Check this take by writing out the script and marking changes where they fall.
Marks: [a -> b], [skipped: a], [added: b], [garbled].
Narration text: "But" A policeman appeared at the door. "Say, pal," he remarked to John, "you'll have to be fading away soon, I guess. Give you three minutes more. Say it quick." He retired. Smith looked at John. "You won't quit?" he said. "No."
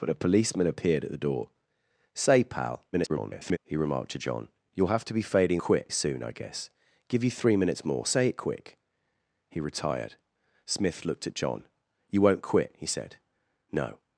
"But" A policeman appeared at the door. "Say, pal," [garbled] he remarked to John, "you'll have to be fading [away -> quit] soon, I guess. Give you three minutes more. Say it quick." He retired. Smith looked at John. "You won't quit?" he said. "No."